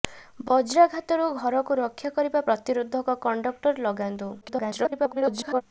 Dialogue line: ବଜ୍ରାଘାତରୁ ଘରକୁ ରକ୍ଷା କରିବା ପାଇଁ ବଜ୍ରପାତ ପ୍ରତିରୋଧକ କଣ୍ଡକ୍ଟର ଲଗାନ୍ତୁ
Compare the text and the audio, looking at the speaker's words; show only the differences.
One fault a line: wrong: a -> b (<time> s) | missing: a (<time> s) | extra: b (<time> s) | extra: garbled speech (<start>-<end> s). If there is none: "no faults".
missing: ପାଇଁ ବଜ୍ରପାତ (2.4 s)
extra: garbled speech (4.4-5.6 s)